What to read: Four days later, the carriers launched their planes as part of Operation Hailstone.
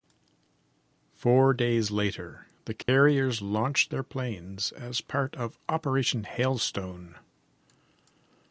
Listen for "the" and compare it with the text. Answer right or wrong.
right